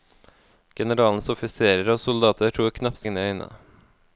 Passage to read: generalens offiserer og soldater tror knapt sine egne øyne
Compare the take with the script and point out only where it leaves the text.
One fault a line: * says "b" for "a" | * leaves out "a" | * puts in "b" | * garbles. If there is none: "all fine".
* leaves out "sine"